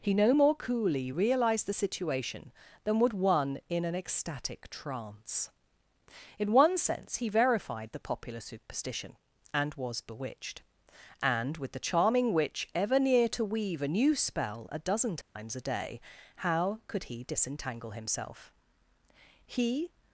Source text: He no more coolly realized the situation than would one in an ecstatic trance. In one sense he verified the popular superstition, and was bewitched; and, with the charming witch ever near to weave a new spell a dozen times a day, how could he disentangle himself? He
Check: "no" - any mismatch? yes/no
no